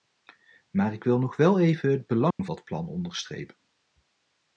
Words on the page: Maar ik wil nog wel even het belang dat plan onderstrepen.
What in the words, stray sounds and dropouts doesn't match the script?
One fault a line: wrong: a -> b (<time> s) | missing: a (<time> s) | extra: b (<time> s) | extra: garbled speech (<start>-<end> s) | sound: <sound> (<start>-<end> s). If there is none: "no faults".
sound: dropout (2.3-2.4 s)